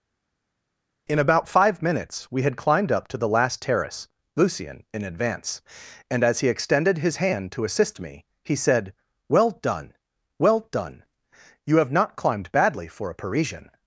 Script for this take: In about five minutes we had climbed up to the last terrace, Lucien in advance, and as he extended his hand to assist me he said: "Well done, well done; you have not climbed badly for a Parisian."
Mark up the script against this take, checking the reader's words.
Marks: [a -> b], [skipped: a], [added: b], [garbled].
In about five minutes we had climbed up to the last terrace, Lucien in advance, and as he extended his hand to assist me he said: "Well done, well done; you have not climbed badly for a Parisian."